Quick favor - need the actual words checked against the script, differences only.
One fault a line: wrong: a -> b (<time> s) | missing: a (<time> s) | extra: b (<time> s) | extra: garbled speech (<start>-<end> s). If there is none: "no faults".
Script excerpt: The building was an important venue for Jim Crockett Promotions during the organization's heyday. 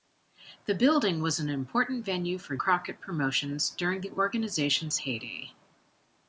missing: Jim (2.6 s)